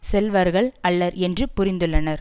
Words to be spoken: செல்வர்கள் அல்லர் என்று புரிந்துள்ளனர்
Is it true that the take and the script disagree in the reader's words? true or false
false